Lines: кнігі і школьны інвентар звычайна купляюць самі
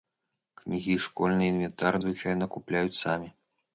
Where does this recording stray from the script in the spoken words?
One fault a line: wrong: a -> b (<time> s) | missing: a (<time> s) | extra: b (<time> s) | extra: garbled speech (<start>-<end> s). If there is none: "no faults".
no faults